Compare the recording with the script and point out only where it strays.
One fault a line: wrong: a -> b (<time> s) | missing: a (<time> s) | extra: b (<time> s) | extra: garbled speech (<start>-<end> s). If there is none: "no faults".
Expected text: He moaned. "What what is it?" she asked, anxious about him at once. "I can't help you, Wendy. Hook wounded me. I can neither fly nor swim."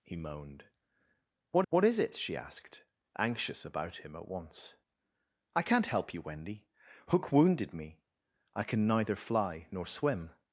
no faults